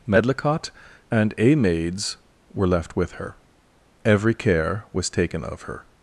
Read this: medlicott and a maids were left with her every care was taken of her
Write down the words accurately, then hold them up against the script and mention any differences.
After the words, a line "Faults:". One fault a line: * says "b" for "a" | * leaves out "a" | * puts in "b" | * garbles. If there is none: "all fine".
medlicott and a maids were left with her every care was taken of her
Faults:
all fine